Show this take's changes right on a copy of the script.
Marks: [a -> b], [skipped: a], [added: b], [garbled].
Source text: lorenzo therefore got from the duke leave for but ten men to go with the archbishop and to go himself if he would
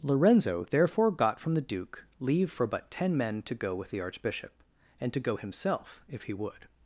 lorenzo therefore got from the duke leave for but ten men to go with the archbishop and to go himself if he would